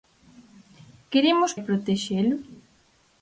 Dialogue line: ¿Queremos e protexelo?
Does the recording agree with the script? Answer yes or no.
yes